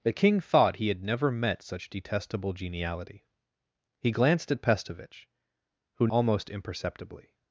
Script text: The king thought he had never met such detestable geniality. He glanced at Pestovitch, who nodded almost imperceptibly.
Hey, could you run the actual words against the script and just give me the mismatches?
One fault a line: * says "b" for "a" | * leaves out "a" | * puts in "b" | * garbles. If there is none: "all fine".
* leaves out "nodded"